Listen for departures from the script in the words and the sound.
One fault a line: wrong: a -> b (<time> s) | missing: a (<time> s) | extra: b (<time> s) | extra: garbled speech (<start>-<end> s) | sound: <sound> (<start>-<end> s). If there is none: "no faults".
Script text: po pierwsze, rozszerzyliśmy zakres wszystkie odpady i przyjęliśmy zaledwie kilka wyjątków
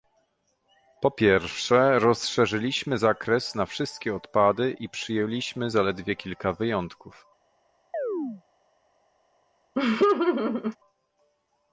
extra: na (3.5 s)
sound: chirp (7.9-8.4 s)
sound: laugh (9.7-10.8 s)